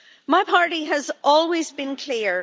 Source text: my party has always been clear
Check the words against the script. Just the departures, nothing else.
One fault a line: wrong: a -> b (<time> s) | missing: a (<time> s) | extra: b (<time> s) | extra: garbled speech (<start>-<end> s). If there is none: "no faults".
no faults